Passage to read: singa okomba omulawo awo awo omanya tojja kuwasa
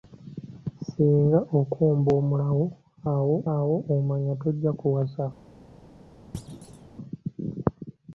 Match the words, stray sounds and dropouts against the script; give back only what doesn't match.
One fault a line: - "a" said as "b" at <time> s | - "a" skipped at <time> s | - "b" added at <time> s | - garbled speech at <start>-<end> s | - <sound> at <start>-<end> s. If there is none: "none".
- thud at 6.3-6.9 s